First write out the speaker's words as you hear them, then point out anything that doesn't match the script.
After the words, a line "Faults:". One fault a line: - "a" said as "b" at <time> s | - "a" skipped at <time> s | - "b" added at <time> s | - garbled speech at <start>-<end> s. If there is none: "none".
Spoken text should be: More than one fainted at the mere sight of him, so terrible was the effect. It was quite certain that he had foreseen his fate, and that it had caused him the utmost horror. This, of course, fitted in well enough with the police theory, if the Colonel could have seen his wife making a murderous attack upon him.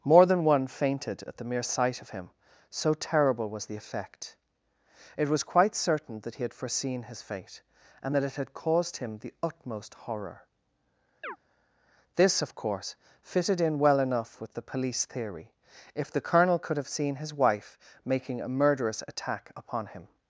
More than one fainted at the mere sight of him, so terrible was the effect. It was quite certain that he had foreseen his fate, and that it had caused him the utmost horror. This, of course, fitted in well enough with the police theory, if the Colonel could have seen his wife making a murderous attack upon him.
Faults:
none